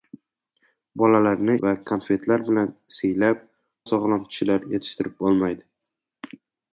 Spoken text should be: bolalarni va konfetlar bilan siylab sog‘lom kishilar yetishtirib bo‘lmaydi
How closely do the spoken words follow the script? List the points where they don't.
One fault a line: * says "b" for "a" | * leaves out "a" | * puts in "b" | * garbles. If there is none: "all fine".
all fine